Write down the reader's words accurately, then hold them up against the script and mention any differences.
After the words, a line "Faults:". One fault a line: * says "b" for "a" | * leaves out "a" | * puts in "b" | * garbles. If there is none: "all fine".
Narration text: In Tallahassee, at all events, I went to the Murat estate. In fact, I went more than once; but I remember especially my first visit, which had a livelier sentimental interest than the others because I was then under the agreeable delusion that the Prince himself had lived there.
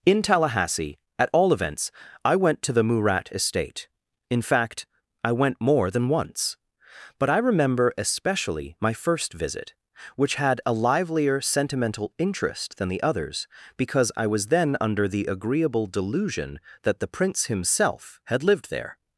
In Tallahassee, at all events, I went to the Murat estate. In fact, I went more than once; but I remember especially my first visit, which had a livelier sentimental interest than the others because I was then under the agreeable delusion that the Prince himself had lived there.
Faults:
all fine